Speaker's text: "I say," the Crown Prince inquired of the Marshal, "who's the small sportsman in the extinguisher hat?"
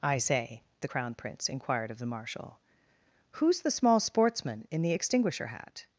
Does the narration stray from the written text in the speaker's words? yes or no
no